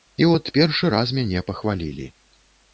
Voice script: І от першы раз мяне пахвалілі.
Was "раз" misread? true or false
false